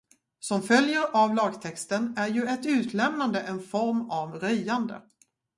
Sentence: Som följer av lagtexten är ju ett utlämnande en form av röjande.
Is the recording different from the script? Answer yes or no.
no